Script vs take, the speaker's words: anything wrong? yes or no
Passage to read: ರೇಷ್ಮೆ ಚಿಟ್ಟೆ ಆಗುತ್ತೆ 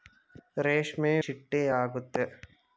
no